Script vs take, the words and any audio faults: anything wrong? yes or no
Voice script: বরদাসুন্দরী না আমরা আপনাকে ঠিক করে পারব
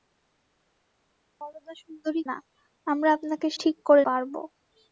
no